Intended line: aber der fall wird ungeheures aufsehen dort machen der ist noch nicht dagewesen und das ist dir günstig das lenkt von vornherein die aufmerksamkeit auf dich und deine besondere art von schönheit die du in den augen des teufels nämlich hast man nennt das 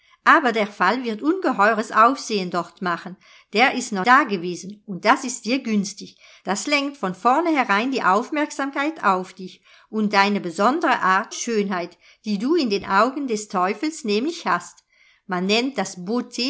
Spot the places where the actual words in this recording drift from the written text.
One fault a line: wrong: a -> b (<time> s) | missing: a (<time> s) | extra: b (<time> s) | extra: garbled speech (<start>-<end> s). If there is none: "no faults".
missing: nicht (4.0 s)
missing: von (11.3 s)